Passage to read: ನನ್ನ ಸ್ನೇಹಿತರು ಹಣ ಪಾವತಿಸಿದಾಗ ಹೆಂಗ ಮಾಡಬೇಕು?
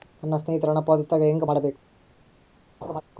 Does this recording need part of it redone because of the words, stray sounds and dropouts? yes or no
yes